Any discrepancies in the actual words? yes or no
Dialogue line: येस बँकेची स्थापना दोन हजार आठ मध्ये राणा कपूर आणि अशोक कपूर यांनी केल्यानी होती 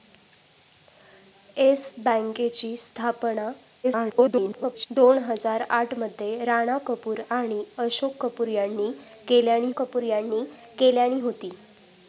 yes